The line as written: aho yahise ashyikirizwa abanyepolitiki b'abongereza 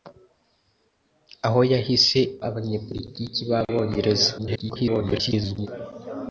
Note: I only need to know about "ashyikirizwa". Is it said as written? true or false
false